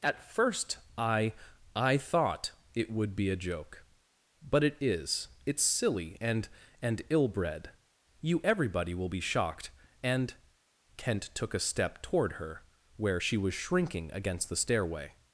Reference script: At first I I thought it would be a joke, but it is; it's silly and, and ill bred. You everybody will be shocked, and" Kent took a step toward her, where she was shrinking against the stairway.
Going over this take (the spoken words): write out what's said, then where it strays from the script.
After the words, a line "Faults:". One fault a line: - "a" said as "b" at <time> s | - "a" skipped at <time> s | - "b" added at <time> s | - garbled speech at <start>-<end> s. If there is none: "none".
At first I I thought it would be a joke, but it is; it's silly and, and ill bred. You everybody will be shocked, and" Kent took a step toward her, where she was shrinking against the stairway.
Faults:
none